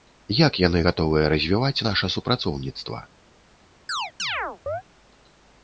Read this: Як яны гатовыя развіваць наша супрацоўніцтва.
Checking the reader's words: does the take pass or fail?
pass